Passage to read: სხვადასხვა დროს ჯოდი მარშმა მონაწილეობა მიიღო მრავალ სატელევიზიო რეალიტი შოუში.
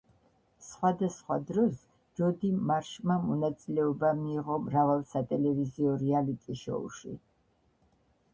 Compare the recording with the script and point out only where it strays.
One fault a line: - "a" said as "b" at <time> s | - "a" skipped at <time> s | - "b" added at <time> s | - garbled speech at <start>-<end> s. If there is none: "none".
none